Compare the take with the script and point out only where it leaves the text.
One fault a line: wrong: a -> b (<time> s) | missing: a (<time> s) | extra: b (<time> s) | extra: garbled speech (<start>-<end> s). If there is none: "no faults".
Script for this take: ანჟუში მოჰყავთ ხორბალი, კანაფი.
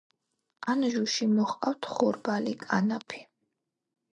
no faults